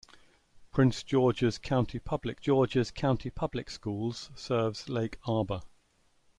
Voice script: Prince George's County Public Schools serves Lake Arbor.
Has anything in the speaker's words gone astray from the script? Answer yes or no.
yes